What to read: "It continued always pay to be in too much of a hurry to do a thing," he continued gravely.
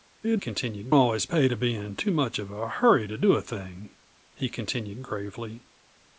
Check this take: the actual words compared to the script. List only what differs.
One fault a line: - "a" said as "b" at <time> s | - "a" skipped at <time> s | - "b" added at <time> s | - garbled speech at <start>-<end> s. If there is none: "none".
none